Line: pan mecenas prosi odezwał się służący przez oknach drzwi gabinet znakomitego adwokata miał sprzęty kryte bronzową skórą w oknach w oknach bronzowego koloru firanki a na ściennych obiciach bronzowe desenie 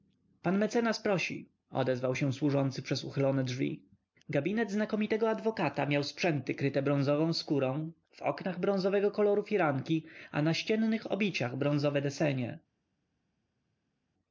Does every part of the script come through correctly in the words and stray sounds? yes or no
no